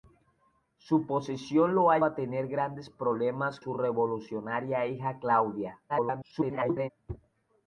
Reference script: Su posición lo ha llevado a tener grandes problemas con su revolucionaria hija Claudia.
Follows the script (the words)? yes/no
no